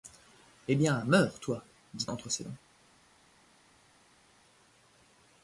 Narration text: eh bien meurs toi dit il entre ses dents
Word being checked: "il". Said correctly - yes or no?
no